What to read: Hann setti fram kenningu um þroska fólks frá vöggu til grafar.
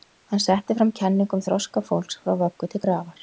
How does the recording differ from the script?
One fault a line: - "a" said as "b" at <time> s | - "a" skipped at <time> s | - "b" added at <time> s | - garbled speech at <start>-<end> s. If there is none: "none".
none